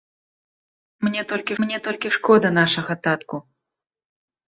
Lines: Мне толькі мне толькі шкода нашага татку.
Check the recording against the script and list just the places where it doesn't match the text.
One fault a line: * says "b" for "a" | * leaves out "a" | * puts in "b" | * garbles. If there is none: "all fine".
all fine